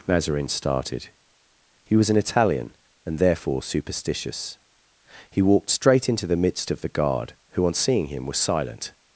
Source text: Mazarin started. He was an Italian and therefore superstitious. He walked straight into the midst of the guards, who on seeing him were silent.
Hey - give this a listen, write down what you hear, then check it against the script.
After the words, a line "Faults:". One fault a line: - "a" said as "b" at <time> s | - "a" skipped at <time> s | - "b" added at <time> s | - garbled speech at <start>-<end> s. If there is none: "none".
Mazarin started. He was an Italian and therefore superstitious. He walked straight into the midst of the guard, who on seeing him were silent.
Faults:
- "guards" said as "guard" at 6.9 s